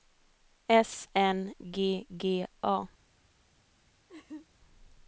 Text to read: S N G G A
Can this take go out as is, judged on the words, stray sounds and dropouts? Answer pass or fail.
fail